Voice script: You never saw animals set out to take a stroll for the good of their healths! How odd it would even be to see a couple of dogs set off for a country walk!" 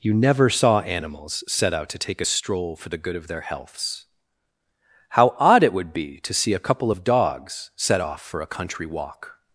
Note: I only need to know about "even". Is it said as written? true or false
false